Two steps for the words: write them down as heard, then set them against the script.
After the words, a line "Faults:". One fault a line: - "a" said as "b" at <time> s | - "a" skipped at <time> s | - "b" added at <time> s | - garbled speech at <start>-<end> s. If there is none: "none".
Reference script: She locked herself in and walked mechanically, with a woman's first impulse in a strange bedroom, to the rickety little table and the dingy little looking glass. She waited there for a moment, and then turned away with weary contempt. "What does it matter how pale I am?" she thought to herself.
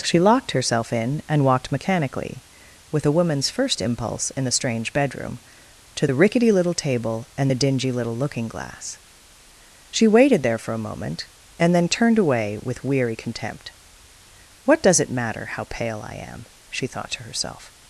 She locked herself in and walked mechanically, with a woman's first impulse in the strange bedroom, to the rickety little table and the dingy little looking glass. She waited there for a moment, and then turned away with weary contempt. "What does it matter how pale I am?" she thought to herself.
Faults:
- "a" said as "the" at 4.4 s